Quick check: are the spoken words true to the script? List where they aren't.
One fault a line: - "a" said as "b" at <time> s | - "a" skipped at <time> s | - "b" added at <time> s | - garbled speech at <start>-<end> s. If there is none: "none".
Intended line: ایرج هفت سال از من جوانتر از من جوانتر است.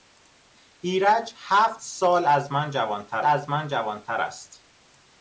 none